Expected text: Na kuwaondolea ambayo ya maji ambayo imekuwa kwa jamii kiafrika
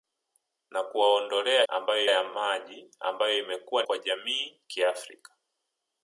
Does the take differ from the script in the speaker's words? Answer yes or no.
no